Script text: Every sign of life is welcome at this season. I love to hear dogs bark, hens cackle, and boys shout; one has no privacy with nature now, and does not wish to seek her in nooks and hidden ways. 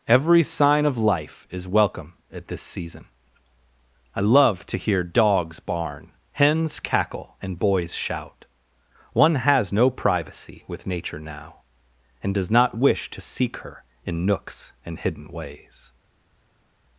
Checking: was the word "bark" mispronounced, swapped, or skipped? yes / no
yes